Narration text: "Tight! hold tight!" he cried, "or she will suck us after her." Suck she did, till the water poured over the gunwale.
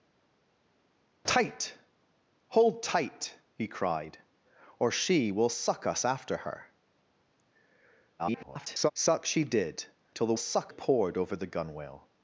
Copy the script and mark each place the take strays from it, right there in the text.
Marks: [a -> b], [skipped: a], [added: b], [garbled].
"Tight! hold tight!" he cried, "or she will suck us after her." [garbled] Suck she did, till the [water -> suck] poured over the gunwale.